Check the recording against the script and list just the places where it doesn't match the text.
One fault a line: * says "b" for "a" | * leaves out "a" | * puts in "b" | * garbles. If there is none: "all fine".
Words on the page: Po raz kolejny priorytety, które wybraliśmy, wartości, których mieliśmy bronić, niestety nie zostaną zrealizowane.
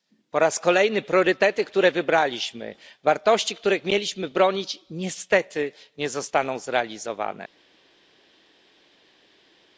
all fine